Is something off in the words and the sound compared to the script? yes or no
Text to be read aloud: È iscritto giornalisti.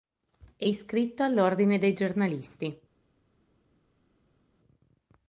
yes